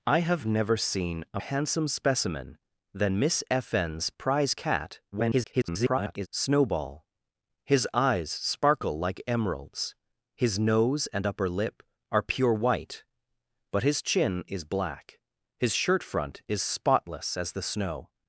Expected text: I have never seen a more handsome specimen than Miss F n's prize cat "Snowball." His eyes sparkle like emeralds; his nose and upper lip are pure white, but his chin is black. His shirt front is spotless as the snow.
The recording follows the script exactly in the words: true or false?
false